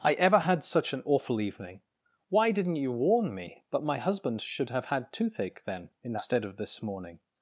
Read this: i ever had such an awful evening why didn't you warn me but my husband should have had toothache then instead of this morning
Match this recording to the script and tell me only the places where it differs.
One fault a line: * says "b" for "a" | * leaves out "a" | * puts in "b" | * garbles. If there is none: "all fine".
all fine